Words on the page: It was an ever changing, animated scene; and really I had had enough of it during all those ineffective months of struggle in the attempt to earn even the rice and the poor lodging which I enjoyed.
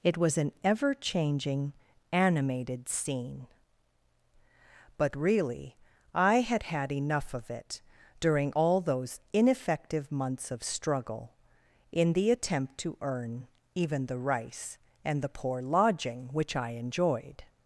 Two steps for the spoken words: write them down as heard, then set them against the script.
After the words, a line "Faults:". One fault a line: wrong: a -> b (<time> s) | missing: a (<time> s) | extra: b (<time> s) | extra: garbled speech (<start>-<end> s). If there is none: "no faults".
It was an ever changing, animated scene; but really I had had enough of it during all those ineffective months of struggle in the attempt to earn even the rice and the poor lodging which I enjoyed.
Faults:
wrong: and -> but (5.0 s)